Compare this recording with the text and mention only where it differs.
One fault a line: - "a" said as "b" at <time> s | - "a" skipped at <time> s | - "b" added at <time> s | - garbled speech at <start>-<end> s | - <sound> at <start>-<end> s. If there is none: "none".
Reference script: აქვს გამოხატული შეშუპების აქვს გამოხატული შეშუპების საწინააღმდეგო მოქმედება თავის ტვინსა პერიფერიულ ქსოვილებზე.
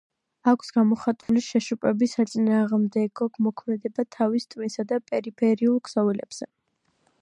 - dropout at 1.2-1.3 s
- "აქვს გამოხატული შეშუპების" skipped at 2.2 s
- "და" added at 4.9 s